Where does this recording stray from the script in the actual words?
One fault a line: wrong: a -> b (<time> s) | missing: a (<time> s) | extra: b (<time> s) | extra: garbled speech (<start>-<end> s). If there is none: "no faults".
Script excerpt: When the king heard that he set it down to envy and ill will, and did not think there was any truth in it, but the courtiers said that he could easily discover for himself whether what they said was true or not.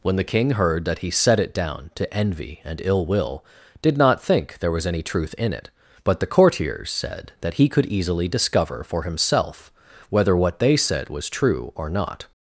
missing: and (3.4 s)